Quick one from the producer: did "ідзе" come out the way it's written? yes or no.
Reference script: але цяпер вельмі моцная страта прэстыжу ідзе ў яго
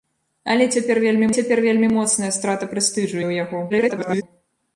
no